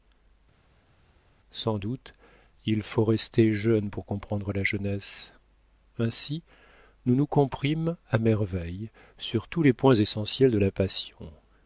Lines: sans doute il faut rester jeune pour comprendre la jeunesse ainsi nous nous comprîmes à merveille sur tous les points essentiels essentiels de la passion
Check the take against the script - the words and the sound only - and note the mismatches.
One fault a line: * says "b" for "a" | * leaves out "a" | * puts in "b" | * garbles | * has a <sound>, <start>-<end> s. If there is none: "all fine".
* leaves out "essentiels"